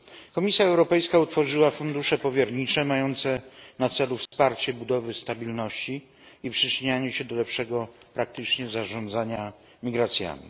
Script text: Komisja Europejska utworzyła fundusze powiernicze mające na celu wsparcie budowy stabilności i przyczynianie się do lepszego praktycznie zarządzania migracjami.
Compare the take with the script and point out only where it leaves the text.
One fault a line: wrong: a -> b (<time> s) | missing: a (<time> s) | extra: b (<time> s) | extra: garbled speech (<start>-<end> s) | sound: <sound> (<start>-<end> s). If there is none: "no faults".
sound: dropout (4.3-4.3 s)